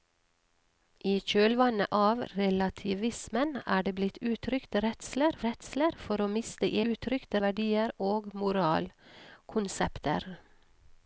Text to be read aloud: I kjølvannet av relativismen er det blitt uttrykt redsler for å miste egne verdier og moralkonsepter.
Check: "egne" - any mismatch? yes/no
yes